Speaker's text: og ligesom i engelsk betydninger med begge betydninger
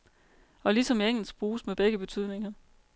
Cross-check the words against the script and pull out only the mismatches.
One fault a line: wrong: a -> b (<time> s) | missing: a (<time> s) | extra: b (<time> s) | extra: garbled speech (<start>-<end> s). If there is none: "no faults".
wrong: betydninger -> bruges (1.4 s)